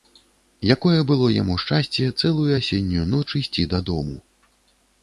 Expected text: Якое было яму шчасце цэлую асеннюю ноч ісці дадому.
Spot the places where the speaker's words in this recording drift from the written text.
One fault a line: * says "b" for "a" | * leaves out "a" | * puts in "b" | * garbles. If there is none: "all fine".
all fine